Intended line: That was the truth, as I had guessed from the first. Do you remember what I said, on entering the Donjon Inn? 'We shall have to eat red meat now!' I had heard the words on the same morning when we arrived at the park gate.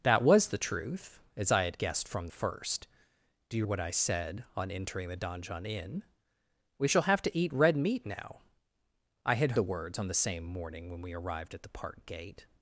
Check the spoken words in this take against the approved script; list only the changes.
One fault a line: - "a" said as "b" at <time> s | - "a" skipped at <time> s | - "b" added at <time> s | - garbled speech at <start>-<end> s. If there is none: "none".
- "the" skipped at 2.3 s
- "remember" skipped at 3.7 s
- "heard" skipped at 9.5 s